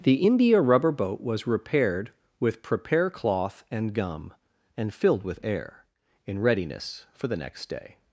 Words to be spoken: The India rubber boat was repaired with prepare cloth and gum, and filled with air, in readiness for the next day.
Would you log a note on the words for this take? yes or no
no